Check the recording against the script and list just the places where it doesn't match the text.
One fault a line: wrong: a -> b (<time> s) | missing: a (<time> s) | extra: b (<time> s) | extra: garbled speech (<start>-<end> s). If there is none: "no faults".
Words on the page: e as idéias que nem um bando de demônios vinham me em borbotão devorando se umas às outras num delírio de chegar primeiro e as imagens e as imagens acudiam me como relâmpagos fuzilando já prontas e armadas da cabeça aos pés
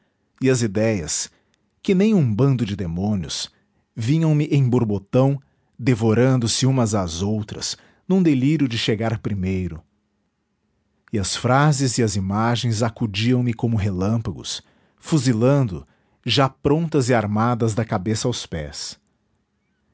wrong: imagens -> frases (11.3 s)